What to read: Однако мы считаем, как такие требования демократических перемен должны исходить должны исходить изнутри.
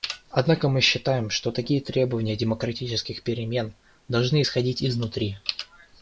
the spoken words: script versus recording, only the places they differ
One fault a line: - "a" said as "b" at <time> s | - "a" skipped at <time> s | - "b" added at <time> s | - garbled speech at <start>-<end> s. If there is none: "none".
- "как" said as "что" at 1.3 s
- "должны исходить" skipped at 4.8 s